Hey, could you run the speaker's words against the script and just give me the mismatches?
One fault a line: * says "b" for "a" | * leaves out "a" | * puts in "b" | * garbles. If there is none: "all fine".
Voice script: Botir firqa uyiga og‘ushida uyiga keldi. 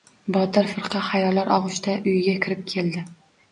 * says "xayollar" for "uyiga"
* puts in "kirib"